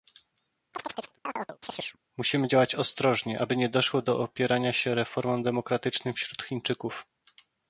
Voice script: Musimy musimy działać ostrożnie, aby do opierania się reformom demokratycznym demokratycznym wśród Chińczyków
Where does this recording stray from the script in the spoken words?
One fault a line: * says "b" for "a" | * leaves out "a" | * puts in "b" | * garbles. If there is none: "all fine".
* leaves out "musimy"
* puts in "nie doszło"
* leaves out "demokratycznym"